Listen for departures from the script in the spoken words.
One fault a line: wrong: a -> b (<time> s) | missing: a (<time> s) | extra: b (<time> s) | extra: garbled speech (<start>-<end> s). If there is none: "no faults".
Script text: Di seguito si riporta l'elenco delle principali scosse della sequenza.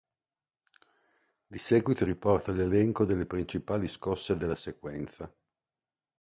missing: si (2.1 s)